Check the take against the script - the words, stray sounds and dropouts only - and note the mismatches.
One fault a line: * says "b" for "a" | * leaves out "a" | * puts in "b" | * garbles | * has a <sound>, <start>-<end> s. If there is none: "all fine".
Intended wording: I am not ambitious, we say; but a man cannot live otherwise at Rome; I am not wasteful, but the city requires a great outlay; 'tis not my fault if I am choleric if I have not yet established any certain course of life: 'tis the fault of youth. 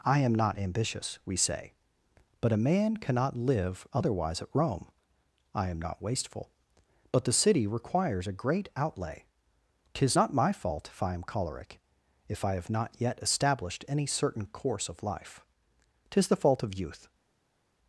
all fine